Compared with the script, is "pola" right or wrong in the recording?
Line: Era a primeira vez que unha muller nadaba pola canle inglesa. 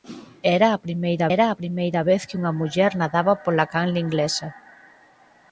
right